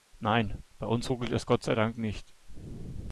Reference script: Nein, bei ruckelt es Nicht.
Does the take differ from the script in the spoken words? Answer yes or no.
yes